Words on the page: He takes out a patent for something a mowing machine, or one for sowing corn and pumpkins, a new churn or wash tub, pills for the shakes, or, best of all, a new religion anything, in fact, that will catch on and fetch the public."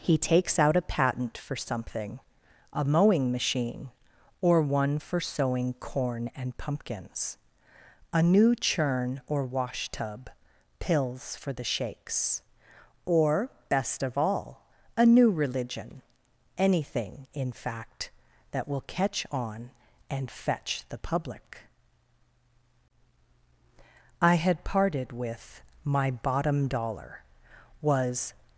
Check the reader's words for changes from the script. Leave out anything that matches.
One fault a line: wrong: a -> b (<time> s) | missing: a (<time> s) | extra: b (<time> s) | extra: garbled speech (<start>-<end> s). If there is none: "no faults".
extra: I had parted with my bottom dollar was (24.2 s)